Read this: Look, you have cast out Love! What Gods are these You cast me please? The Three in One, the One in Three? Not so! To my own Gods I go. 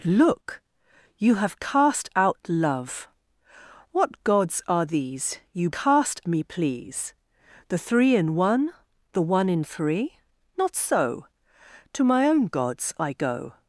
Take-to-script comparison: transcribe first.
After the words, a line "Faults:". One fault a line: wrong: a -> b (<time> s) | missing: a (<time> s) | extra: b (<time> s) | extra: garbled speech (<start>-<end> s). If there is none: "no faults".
Look, you have cast out Love! What Gods are these You cast me please? The Three in One, the One in Three? Not so! To my own Gods I go.
Faults:
no faults